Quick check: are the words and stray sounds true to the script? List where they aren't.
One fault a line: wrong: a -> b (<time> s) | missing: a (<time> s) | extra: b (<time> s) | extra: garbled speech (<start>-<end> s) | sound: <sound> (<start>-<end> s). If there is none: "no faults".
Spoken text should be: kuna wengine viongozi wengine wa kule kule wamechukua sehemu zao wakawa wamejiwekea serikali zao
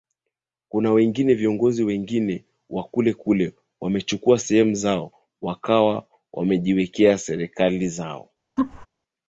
sound: laugh (8.6-8.9 s)